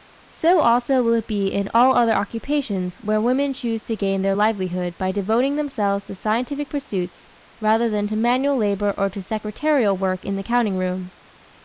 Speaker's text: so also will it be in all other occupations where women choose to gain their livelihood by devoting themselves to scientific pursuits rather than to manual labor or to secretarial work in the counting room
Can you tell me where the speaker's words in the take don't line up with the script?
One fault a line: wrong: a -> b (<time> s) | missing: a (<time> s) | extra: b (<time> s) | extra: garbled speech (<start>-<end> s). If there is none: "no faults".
no faults